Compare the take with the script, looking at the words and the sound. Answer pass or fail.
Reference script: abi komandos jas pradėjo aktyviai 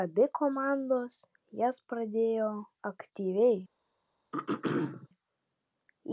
fail